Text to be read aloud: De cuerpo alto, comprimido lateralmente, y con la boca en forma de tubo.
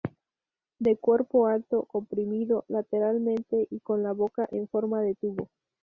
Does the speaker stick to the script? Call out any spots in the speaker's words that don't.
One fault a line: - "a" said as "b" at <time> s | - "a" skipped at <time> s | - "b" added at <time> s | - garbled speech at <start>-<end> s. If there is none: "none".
none